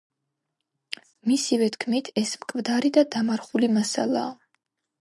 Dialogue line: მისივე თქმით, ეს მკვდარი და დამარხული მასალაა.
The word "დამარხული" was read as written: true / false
true